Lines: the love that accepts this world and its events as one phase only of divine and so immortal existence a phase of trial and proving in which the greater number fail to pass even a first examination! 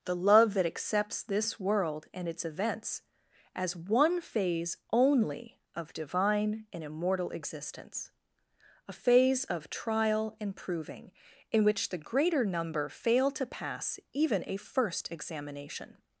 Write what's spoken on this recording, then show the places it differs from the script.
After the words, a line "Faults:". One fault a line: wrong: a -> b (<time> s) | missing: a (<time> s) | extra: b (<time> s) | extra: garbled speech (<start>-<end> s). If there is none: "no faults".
the love that accepts this world and its events as one phase only of divine and immortal existence a phase of trial and proving in which the greater number fail to pass even a first examination!
Faults:
missing: so (6.8 s)